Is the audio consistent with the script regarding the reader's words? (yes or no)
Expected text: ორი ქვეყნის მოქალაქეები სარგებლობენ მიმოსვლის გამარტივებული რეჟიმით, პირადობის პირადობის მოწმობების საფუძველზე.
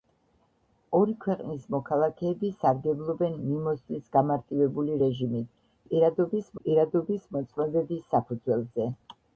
yes